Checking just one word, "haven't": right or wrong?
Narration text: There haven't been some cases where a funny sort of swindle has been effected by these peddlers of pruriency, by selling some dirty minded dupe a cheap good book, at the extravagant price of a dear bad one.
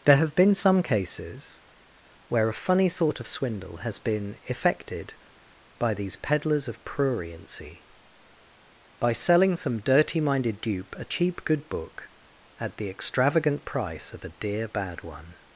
wrong